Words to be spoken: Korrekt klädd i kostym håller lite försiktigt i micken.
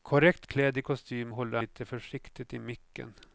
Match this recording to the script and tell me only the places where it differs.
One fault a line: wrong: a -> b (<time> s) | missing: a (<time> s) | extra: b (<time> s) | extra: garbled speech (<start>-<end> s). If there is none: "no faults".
no faults